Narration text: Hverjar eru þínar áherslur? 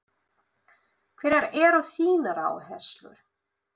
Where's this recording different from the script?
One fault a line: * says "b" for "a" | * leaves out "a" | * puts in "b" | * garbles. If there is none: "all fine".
all fine